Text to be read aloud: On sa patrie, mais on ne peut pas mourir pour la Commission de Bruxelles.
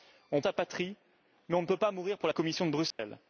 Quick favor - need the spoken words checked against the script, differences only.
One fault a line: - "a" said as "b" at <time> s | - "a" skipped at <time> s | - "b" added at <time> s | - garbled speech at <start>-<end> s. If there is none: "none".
none